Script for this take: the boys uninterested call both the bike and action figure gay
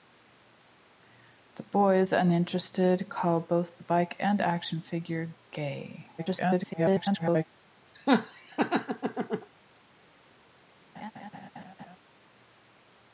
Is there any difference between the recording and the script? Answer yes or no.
yes